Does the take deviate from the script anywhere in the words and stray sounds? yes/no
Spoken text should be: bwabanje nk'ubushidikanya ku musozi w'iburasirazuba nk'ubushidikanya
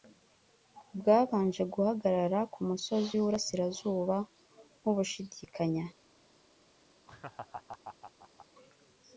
yes